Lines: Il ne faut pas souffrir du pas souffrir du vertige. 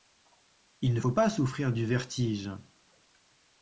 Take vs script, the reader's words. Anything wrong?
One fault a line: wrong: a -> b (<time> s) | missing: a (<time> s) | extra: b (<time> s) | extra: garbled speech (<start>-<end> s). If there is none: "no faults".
missing: pas souffrir du (1.9 s)